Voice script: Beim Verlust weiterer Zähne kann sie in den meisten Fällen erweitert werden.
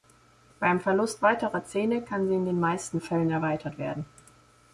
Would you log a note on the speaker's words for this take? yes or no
no